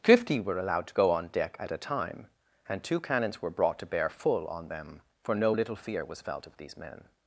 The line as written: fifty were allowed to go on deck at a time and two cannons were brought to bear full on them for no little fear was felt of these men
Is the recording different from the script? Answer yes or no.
no